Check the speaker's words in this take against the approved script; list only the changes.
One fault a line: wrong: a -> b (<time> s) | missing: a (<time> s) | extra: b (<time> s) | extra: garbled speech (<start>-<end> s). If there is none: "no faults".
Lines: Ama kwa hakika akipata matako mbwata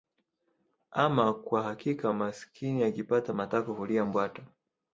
extra: maskini (2.1 s)
extra: hulia (3.7 s)